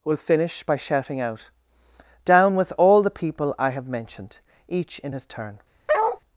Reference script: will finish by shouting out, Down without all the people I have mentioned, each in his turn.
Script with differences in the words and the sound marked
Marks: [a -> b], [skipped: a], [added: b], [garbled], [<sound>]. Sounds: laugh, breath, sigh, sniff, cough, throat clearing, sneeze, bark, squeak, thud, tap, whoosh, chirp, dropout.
will finish by shouting out, Down [without -> with] all the people I have mentioned, each in his turn. [bark]